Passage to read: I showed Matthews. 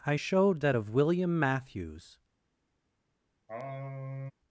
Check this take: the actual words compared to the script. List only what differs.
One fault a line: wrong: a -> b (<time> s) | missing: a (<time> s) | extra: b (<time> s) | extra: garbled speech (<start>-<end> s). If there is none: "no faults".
extra: that of William (0.6 s)